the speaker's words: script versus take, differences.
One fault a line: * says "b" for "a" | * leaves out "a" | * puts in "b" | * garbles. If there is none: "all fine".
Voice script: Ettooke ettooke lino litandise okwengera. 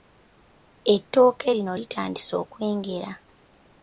* leaves out "ettooke"